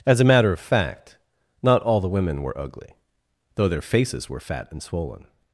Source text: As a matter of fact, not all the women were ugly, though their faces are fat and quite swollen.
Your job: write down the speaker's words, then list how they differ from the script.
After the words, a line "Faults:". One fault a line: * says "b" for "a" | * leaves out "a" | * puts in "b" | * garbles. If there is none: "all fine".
As a matter of fact, not all the women were ugly, though their faces were fat and swollen.
Faults:
* says "were" for "are"
* leaves out "quite"